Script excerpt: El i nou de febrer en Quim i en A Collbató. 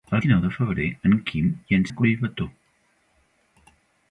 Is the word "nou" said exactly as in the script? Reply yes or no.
yes